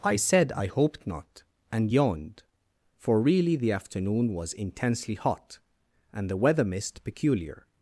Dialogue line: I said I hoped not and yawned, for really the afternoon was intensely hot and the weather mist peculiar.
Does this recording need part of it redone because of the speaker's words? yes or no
no